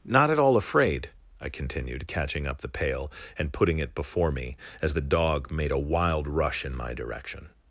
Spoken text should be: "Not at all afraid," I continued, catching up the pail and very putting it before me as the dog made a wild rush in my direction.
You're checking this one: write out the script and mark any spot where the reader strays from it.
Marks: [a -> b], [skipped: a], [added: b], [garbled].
"Not at all afraid," I continued, catching up the pail and [skipped: very] putting it before me as the dog made a wild rush in my direction.